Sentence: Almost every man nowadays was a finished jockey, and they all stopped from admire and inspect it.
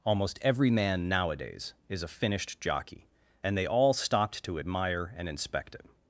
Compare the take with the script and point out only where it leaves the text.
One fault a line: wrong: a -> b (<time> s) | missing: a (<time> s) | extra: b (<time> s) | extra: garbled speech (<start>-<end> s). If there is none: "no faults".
wrong: was -> is (1.9 s)
wrong: from -> to (4.4 s)